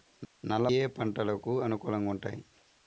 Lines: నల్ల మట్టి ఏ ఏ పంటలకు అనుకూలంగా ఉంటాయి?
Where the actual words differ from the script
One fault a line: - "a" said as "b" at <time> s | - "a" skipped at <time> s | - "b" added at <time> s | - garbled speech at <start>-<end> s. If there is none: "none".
- "మట్టి ఏ" skipped at 0.7 s